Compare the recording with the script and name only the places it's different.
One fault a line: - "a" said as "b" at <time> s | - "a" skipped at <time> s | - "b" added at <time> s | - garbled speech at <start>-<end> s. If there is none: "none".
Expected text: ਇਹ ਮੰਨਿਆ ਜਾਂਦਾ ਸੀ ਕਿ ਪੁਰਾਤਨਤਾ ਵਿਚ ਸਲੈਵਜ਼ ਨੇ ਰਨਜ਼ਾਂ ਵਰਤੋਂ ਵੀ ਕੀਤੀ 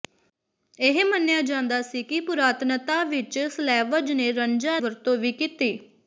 none